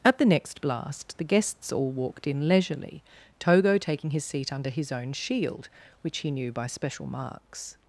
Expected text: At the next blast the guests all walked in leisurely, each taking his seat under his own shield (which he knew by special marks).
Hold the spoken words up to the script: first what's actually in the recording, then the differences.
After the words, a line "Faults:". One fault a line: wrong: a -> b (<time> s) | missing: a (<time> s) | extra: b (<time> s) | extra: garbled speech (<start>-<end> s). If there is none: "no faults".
At the next blast the guests all walked in leisurely, togo taking his seat under his own shield (which he knew by special marks).
Faults:
wrong: each -> togo (3.4 s)